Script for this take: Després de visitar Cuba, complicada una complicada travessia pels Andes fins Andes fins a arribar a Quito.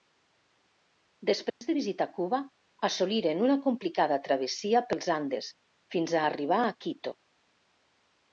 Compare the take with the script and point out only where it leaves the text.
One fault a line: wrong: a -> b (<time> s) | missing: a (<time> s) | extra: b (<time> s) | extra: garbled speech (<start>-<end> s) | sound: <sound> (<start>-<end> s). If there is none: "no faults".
sound: dropout (1.5-1.6 s)
wrong: complicada -> assoliren (2.9 s)
missing: Andes fins (6.1 s)